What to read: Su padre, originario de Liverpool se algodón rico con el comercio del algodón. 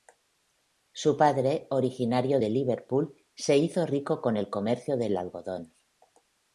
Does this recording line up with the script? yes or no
no